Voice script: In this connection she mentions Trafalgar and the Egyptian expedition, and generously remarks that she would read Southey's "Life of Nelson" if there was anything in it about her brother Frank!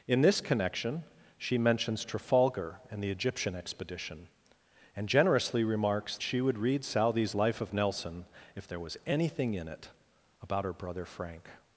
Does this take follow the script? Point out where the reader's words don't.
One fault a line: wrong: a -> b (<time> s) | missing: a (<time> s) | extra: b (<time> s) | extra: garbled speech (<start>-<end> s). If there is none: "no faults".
missing: that (6.2 s)